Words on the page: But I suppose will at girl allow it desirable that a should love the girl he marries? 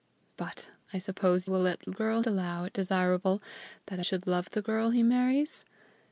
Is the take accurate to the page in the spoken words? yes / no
yes